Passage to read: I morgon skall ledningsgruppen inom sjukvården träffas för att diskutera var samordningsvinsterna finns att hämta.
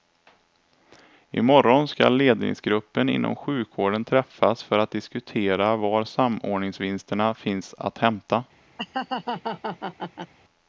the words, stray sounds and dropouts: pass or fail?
fail